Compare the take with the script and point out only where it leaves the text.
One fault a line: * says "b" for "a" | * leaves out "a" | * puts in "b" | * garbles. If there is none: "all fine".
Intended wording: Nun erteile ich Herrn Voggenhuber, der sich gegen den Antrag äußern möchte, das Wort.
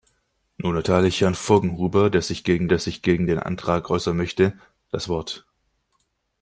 * puts in "der sich gegen"